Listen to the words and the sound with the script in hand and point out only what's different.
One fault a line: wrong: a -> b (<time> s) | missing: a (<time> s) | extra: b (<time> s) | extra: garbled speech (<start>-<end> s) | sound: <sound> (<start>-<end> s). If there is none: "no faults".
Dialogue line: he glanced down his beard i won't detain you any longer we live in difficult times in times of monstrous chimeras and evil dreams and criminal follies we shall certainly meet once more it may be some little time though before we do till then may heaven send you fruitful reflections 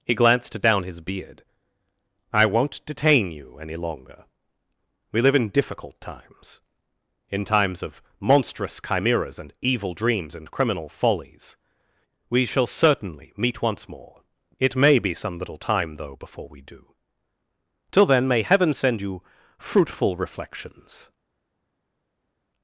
no faults